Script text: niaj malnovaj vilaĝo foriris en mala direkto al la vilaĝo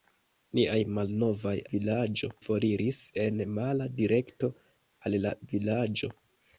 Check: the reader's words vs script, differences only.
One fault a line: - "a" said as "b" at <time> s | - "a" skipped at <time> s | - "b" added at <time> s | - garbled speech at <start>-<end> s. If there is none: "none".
none